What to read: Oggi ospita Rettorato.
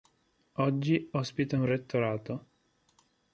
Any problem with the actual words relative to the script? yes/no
yes